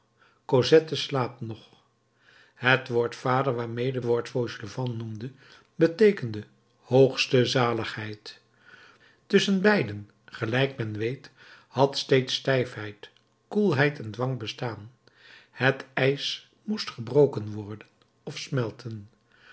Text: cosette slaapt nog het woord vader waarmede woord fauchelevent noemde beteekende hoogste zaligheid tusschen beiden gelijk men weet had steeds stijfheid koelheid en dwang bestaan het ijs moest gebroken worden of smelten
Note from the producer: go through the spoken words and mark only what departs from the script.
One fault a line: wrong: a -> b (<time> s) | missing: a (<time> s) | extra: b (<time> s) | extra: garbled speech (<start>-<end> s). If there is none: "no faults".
no faults